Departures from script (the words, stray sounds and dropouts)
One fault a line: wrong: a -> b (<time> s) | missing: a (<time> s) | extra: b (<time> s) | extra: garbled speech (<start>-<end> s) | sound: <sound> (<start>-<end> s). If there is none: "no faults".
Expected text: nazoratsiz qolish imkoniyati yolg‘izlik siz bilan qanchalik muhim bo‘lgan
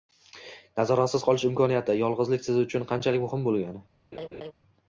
wrong: bilan -> uchun (2.6 s)
sound: laugh (4.1-4.5 s)